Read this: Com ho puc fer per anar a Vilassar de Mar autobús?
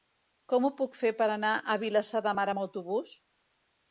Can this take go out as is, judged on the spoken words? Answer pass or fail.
fail